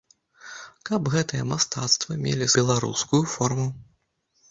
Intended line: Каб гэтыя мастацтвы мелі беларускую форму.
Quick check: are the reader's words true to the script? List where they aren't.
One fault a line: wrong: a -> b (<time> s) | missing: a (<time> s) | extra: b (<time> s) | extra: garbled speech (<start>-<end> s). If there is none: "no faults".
no faults